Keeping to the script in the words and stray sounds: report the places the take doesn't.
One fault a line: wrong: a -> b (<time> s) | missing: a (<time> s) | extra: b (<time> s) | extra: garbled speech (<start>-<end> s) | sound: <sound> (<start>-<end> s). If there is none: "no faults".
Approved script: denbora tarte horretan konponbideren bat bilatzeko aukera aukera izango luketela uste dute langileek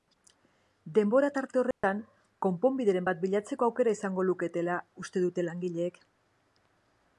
sound: dropout (1.7-1.8 s)
missing: aukera (4.0 s)